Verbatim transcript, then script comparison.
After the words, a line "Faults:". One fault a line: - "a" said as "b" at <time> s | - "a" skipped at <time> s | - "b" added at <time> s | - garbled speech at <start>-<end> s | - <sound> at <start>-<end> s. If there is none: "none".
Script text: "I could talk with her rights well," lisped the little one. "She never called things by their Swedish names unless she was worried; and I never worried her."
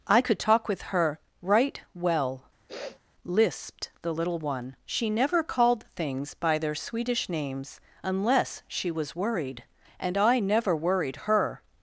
"I could talk with her right well," lisped the little one. "She never called things by their Swedish names unless she was worried; and I never worried her."
Faults:
- "rights" said as "right" at 1.4 s
- sniff at 2.7-3.0 s